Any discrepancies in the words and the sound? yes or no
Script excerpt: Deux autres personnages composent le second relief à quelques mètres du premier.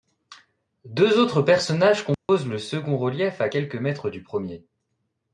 yes